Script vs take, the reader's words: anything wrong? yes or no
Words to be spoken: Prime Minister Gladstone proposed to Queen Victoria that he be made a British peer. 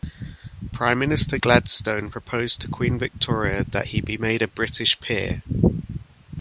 no